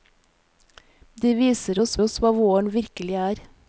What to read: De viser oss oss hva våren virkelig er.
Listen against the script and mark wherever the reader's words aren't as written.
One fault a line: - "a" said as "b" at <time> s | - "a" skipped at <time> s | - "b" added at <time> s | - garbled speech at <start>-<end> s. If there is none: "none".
none